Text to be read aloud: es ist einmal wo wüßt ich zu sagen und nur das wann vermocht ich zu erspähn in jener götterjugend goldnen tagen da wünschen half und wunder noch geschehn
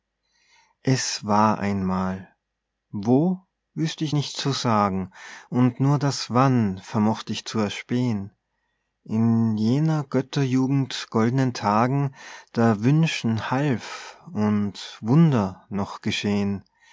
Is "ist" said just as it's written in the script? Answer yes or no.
no